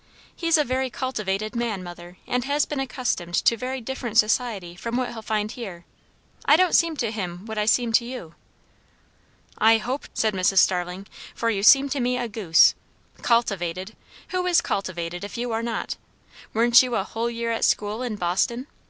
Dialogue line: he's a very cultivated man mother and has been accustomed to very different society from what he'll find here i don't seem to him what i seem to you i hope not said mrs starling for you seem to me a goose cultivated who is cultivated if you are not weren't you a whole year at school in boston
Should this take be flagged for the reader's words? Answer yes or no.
yes